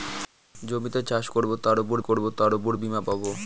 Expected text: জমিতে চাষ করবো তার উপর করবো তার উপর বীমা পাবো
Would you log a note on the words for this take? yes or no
no